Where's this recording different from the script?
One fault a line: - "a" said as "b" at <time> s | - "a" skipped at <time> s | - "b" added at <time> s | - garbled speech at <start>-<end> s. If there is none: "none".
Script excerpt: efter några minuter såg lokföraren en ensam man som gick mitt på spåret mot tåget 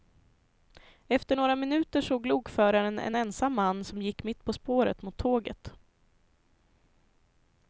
none